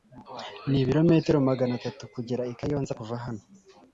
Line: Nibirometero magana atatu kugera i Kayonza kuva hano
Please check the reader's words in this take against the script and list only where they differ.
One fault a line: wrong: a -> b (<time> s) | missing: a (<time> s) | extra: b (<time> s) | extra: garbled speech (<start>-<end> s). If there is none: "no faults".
no faults